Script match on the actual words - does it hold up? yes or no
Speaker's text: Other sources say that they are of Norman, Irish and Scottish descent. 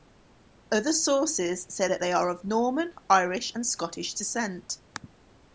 yes